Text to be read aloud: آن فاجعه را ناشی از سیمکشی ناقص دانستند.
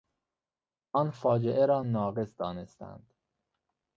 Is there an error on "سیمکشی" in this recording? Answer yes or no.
yes